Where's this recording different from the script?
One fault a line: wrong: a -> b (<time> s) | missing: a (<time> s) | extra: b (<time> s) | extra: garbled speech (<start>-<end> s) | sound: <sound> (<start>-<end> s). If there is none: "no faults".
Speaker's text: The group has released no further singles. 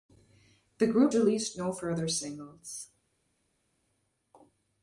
missing: has (1.1 s)